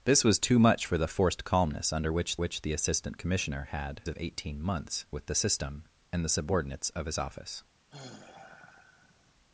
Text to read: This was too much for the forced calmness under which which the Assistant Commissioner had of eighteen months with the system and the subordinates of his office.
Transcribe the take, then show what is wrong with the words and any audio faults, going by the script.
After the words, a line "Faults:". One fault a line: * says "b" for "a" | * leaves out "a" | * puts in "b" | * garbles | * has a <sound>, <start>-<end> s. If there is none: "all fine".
This was too much for the forced calmness under which which the Assistant Commissioner had of eighteen months with the system and the subordinates of his office.
Faults:
* has a sigh, 7.9-9.3 s